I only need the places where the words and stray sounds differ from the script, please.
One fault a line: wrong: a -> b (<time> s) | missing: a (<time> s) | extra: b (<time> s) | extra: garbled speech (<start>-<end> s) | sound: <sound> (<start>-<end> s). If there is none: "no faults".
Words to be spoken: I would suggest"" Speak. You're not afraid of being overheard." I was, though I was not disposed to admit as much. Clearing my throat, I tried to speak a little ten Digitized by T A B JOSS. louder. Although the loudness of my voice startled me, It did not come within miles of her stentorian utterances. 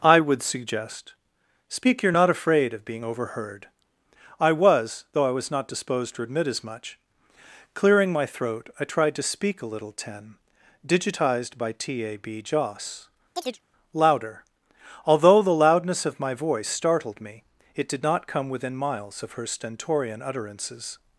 sound: chirp (13.4-13.6 s)